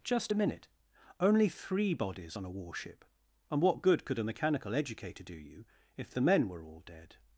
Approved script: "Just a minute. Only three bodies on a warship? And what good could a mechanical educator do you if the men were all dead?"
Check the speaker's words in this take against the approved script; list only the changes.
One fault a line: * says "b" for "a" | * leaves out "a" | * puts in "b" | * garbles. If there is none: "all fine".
all fine